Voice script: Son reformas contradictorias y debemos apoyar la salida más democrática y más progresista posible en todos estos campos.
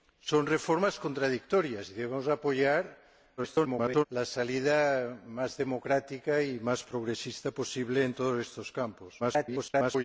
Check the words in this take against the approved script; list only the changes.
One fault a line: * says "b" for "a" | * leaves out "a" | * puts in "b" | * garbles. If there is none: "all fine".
* garbles
* garbles